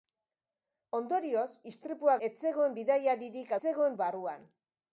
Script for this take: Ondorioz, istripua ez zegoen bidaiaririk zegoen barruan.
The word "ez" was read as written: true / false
true